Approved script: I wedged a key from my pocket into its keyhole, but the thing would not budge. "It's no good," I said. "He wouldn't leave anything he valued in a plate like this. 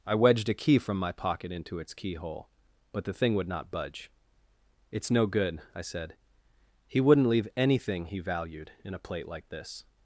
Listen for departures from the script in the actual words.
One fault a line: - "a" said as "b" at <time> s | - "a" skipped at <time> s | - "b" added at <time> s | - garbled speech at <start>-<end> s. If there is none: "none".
none